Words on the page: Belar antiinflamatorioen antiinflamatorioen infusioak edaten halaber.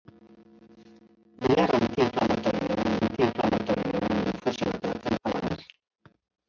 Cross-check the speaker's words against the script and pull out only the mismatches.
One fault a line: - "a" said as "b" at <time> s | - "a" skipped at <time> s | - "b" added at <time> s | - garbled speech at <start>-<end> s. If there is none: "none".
none